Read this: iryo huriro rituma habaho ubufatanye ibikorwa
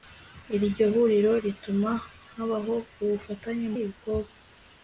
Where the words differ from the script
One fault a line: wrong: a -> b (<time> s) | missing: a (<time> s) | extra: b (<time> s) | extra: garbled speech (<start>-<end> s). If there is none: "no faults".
no faults